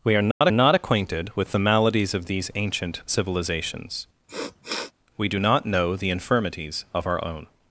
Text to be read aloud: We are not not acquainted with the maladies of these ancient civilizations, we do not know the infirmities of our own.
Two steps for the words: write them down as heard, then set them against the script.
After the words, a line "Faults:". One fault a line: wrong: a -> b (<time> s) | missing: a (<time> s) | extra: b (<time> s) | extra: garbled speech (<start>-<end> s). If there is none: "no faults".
We are not not acquainted with the maladies of these ancient civilizations, we do not know the infirmities of our own.
Faults:
no faults